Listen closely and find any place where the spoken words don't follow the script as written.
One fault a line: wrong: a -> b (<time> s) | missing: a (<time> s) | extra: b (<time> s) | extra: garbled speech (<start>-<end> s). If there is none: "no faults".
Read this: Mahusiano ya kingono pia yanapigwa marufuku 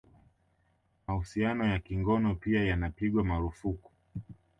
no faults